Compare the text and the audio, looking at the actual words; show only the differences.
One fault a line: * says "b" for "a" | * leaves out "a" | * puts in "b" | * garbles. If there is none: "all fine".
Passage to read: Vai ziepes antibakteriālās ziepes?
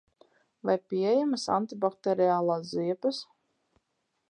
* says "pieejamas" for "ziepes"